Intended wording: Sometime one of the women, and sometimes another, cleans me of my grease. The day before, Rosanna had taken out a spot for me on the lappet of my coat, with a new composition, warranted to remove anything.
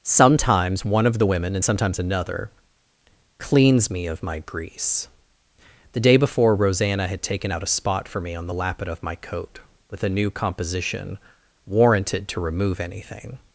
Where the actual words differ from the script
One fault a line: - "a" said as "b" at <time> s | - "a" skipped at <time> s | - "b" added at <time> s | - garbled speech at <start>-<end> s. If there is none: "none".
- "Sometime" said as "Sometimes" at 0.0 s